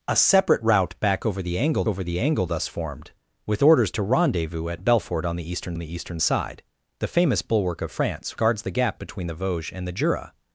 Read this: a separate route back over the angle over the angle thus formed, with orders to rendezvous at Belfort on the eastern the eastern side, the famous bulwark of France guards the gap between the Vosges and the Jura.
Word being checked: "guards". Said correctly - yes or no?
yes